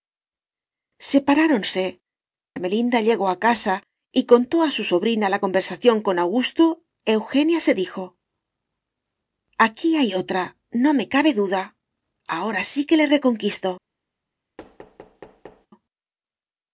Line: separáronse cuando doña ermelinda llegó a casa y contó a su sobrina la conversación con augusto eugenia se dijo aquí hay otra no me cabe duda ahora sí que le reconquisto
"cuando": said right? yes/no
no